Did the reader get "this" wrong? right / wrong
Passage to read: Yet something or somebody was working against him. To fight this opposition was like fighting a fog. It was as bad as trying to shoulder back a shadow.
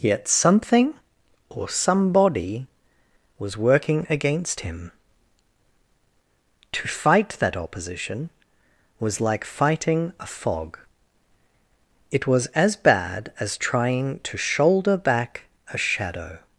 wrong